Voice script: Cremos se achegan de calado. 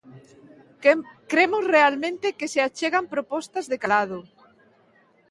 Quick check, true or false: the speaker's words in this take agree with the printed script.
false